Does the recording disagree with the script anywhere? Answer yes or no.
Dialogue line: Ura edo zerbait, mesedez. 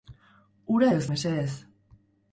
yes